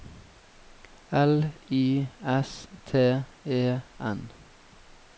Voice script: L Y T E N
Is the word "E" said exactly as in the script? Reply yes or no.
yes